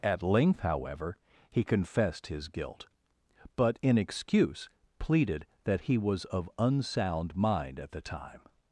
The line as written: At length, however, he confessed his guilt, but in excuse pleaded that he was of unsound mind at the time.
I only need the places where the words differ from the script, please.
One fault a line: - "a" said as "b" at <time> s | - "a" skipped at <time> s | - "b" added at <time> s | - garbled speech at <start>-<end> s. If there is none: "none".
none